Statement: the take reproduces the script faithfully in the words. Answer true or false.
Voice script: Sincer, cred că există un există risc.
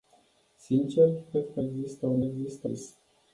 true